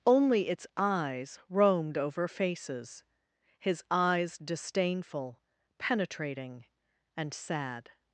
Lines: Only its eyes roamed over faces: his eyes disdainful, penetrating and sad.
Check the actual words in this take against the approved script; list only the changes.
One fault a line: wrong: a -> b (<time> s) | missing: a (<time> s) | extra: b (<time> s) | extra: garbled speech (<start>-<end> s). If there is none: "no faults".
no faults